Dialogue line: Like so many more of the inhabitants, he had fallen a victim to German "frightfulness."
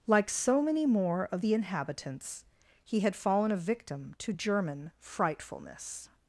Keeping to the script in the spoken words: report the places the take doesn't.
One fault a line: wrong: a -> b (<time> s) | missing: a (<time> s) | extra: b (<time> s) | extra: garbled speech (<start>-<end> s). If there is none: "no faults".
no faults